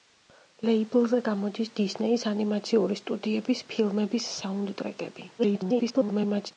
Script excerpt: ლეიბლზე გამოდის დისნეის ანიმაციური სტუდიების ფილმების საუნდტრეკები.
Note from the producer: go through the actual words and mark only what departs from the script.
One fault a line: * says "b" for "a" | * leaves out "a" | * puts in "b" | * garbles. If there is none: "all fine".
* garbles